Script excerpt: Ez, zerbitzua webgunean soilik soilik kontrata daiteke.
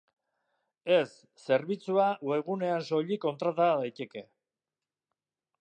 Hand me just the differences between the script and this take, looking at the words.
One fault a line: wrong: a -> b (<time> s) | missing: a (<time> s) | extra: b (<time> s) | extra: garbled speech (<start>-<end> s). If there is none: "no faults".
missing: soilik (3.2 s)